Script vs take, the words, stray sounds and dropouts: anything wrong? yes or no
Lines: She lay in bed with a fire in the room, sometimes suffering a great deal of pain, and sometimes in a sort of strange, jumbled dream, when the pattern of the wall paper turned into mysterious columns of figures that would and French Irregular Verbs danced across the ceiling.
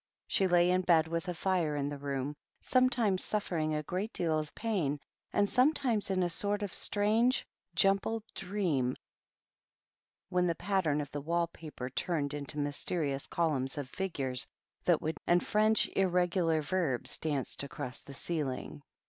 no